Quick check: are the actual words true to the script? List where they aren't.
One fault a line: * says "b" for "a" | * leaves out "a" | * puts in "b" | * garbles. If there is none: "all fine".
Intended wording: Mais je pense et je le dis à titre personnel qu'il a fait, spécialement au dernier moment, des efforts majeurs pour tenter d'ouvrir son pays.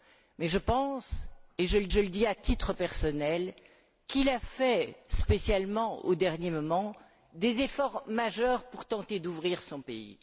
* puts in "je le"